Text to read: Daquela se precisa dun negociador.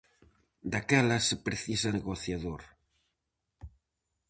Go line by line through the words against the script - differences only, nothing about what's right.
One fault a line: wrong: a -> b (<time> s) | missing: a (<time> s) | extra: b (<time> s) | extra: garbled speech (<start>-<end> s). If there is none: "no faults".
missing: dun (1.9 s)